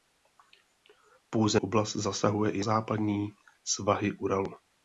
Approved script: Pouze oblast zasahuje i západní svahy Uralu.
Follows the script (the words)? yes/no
yes